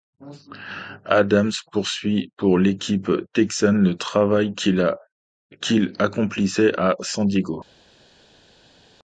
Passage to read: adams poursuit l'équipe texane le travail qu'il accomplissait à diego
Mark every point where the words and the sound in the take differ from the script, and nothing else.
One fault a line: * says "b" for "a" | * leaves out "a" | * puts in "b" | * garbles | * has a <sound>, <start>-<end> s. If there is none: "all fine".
* puts in "pour"
* puts in "san"